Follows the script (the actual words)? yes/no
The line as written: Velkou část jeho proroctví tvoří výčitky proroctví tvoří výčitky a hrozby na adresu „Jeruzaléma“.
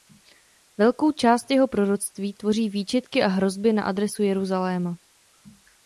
no